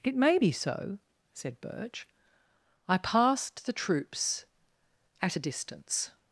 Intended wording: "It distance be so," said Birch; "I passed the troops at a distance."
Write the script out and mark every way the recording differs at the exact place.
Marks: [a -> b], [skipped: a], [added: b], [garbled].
"It [distance -> may] be so," said Birch; "I passed the troops at a distance."